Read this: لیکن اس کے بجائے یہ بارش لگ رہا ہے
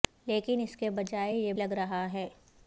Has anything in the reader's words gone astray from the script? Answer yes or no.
yes